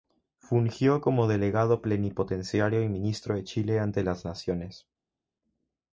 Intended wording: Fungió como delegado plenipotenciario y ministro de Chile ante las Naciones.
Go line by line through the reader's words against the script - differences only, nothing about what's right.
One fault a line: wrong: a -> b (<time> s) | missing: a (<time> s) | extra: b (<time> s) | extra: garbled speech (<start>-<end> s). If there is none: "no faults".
no faults